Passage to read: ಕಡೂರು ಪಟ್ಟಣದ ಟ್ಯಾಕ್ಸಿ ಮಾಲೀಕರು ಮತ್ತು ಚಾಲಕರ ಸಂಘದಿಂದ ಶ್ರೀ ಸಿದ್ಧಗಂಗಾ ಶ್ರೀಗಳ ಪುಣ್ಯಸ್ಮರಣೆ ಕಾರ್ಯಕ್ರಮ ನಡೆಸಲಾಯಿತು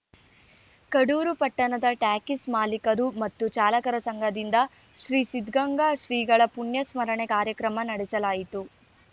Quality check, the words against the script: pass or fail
pass